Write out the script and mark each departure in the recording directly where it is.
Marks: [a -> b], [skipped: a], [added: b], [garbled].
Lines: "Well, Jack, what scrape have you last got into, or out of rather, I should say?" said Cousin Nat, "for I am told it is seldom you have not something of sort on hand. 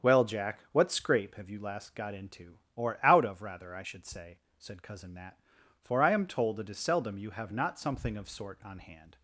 "Well, Jack, what scrape have you last got into, or out of rather, I should say?" said Cousin Nat, "for I am told it is seldom you have not something of sort on hand.